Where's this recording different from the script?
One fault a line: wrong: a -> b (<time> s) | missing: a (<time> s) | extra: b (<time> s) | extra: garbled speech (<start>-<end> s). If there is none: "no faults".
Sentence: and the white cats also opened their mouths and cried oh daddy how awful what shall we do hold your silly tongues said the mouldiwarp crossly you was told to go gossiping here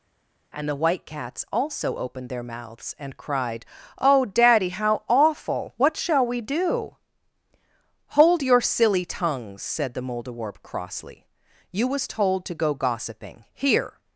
no faults